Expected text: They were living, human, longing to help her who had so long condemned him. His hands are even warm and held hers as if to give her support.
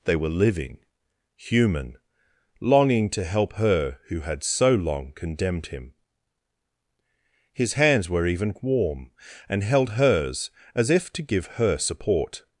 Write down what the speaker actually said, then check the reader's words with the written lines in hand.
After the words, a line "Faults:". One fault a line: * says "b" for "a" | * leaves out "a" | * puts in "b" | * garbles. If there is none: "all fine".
They were living, human, longing to help her who had so long condemned him. His hands were even warm and held hers as if to give her support.
Faults:
* says "were" for "are"